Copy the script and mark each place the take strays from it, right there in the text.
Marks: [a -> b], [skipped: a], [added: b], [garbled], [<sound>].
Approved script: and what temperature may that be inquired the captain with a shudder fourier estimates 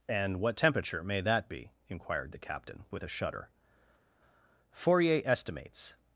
and what temperature may that be inquired the captain with a shudder fourier estimates